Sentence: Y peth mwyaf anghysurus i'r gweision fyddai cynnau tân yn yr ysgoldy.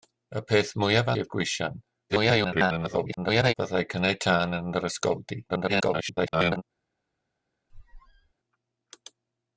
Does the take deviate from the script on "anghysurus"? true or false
true